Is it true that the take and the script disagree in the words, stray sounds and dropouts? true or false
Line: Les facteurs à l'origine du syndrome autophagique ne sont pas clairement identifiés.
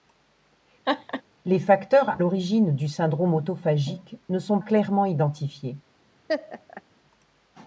true